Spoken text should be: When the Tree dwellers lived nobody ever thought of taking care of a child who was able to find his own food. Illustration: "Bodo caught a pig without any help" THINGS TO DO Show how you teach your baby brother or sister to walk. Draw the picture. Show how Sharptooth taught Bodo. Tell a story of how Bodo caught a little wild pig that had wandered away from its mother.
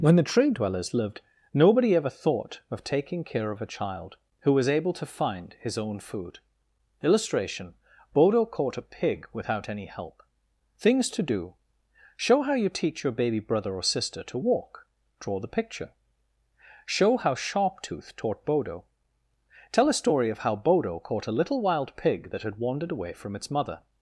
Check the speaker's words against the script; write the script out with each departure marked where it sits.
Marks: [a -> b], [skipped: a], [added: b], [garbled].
When the Tree dwellers lived nobody ever thought of taking care of a child who was able to find his own food. Illustration: "Bodo caught a pig without any help" THINGS TO DO Show how you teach your baby brother or sister to walk. Draw the picture. Show how Sharptooth taught Bodo. Tell a story of how Bodo caught a little wild pig that had wandered away from its mother.